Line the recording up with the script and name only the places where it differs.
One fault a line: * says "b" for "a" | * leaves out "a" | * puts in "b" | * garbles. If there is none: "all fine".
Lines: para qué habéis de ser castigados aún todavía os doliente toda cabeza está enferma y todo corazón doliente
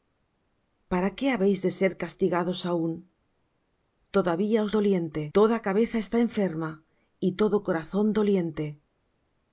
all fine